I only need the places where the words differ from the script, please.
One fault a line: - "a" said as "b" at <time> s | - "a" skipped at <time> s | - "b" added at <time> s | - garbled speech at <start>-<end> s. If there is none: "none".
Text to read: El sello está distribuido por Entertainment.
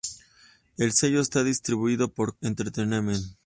none